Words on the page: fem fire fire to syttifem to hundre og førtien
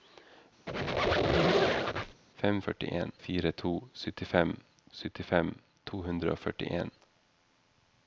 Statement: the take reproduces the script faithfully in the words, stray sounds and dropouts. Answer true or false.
false